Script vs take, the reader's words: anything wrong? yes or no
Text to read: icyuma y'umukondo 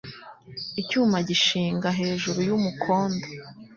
yes